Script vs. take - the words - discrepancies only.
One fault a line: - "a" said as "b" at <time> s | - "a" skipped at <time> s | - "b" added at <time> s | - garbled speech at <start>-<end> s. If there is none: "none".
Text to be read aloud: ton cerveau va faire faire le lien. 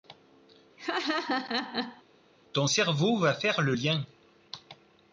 - "faire" skipped at 3.6 s